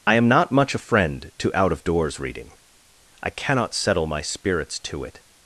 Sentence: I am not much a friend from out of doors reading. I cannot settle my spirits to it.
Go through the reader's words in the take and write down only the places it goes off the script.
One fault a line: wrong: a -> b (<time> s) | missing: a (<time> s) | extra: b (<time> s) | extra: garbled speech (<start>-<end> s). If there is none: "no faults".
wrong: from -> to (1.4 s)